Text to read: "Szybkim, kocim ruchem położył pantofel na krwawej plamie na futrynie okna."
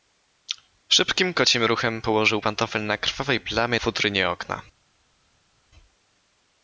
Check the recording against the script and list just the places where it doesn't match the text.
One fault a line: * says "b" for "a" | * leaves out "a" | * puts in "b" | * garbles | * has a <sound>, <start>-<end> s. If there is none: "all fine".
* leaves out "na"